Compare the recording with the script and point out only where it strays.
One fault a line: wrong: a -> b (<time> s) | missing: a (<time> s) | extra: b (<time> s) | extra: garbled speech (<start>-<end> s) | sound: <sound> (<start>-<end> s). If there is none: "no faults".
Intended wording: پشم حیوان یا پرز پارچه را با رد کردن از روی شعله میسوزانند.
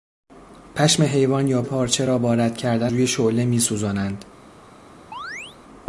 missing: پرز (1.6 s)
missing: از (2.9 s)
sound: chirp (5.1-5.6 s)